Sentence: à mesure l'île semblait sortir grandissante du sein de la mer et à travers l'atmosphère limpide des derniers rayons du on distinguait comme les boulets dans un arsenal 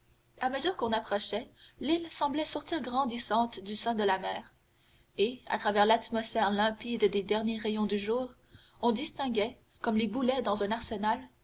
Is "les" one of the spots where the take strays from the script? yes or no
no